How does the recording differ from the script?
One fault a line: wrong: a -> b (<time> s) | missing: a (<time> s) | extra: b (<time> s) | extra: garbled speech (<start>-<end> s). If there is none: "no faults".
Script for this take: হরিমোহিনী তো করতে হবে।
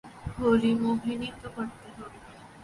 no faults